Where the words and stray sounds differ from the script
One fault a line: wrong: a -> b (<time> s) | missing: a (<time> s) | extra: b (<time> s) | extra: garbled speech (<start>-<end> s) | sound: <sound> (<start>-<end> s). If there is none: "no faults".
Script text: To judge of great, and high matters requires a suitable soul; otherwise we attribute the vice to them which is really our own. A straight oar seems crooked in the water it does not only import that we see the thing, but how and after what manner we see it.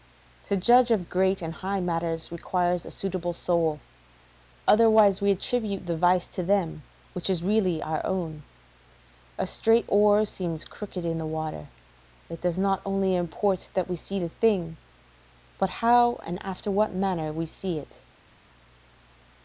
no faults